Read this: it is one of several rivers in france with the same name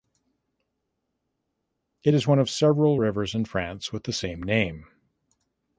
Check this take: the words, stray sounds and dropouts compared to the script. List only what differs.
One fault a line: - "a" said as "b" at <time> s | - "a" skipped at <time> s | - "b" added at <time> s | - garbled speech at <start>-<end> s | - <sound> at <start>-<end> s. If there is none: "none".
none